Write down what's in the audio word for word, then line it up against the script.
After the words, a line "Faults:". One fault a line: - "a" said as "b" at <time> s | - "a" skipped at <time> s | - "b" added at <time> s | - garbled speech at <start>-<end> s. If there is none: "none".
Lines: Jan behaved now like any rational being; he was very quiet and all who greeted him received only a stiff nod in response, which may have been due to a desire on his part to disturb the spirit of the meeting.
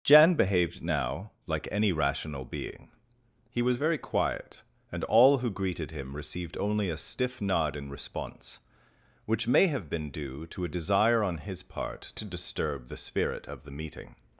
Jan behaved now like any rational being; he was very quiet and all who greeted him received only a stiff nod in response, which may have been due to a desire on his part to disturb the spirit of the meeting.
Faults:
none